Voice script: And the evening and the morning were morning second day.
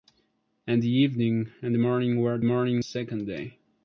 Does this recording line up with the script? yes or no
yes